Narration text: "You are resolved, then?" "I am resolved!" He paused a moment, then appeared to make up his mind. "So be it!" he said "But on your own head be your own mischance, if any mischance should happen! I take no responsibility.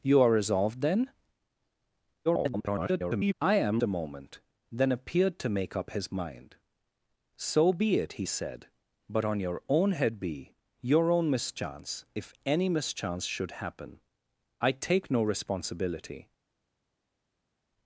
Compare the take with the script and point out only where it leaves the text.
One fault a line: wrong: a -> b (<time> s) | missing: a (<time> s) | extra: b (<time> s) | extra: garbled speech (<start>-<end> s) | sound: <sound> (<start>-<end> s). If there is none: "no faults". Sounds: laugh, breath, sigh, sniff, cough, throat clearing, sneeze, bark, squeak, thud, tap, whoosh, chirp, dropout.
extra: garbled speech (2.3-3.3 s)
missing: resolved He paused (3.8 s)